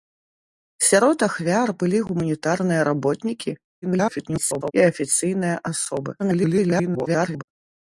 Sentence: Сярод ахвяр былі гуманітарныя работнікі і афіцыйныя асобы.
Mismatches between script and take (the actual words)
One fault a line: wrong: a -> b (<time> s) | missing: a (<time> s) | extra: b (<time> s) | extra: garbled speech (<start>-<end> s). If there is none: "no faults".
extra: garbled speech (3.8-4.7 s)
extra: garbled speech (6.2-7.4 s)